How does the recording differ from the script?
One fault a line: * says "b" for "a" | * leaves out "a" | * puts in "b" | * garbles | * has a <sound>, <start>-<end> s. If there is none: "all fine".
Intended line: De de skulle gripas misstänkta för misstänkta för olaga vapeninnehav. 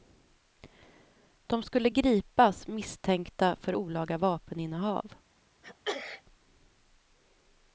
* leaves out "de"
* leaves out "misstänkta för"
* has a sneeze, 5.6-6.2 s